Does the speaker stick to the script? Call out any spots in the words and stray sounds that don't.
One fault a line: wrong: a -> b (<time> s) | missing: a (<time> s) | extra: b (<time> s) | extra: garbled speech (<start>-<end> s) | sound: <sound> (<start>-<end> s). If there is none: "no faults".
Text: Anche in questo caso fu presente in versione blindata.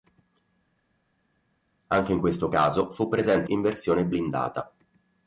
no faults